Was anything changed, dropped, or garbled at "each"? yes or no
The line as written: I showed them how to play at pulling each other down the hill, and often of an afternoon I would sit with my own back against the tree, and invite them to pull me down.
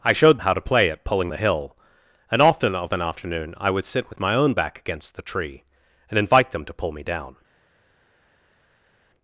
yes